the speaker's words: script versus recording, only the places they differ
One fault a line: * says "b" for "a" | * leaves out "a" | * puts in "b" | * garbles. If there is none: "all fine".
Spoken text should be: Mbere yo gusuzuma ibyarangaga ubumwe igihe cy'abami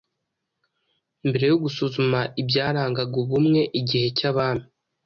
all fine